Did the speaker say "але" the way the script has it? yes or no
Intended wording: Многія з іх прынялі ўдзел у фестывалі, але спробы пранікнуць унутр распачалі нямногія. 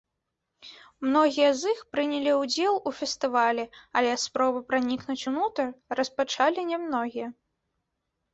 yes